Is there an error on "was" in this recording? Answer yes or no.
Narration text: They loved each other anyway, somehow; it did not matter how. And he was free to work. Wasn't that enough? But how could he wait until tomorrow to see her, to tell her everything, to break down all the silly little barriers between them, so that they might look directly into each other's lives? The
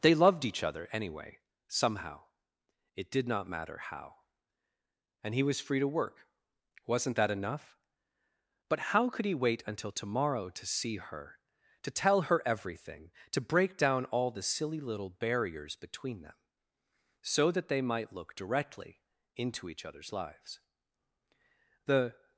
no